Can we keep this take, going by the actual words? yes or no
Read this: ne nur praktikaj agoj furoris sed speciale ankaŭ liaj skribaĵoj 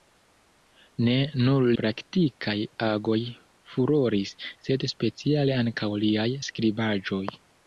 yes